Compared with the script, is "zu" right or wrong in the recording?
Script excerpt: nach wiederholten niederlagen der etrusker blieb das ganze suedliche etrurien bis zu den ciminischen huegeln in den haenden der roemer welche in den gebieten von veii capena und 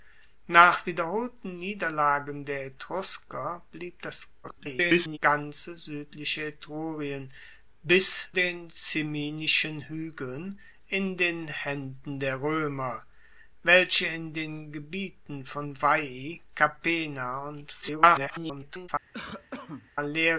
wrong